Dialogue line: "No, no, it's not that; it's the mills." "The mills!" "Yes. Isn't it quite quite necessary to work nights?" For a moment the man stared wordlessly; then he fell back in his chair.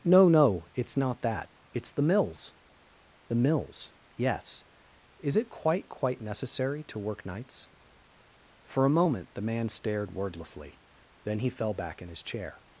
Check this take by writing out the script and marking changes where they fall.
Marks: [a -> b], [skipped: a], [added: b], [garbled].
"No, no, it's not that; it's the mills." "The mills!" "Yes. [Isn't -> Is] it quite quite necessary to work nights?" For a moment the man stared wordlessly; then he fell back in his chair.